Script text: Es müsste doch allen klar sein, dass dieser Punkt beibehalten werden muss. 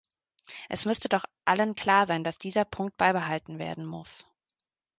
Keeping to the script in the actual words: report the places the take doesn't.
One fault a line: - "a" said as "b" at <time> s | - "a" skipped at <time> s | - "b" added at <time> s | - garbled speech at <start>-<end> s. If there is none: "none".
none